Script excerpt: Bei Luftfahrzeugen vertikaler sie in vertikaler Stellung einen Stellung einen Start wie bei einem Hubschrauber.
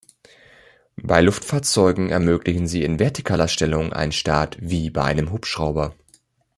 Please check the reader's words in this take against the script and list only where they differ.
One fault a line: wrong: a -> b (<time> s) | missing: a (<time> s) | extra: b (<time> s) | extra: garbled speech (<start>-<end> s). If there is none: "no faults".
wrong: vertikaler -> ermöglichen (2.1 s)
missing: Stellung einen (4.1 s)